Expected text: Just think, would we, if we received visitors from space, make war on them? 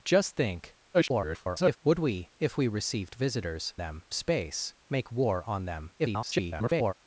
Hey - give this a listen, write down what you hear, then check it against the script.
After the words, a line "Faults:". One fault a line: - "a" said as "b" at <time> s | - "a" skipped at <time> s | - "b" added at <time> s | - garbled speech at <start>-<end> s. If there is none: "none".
Just think, [garbled] would we, if we received visitors them space, make war on them? [garbled]
Faults:
- garbled speech at 0.9-1.8 s
- "from" said as "them" at 3.8 s
- garbled speech at 6.0-6.9 s